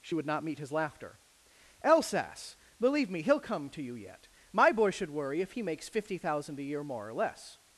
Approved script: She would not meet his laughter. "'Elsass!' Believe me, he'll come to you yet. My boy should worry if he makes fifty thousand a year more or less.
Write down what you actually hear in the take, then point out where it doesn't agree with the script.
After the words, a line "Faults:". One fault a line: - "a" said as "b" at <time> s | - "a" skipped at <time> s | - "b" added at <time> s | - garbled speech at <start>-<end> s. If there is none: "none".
She would not meet his laughter. "'Elsass!' Believe me, he'll come to you yet. My boy should worry if he makes fifty thousand a year more or less.
Faults:
none